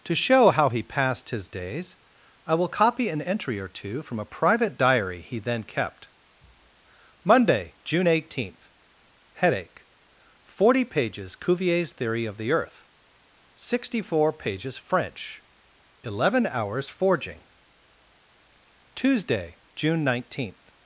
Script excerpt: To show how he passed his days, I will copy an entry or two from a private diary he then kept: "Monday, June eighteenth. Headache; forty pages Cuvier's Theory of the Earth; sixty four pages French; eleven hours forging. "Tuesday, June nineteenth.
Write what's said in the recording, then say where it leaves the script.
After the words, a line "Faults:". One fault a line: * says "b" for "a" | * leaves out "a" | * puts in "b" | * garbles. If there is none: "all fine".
To show how he passed his days, I will copy an entry or two from a private diary he then kept: "Monday, June eighteenth. Headache; forty pages Cuvier's Theory of the Earth; sixty four pages French; eleven hours forging. "Tuesday, June nineteenth.
Faults:
all fine